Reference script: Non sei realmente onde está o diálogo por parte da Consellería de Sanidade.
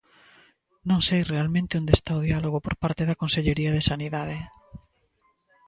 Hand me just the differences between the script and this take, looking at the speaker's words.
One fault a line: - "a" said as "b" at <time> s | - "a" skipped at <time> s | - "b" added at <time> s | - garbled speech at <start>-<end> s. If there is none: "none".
none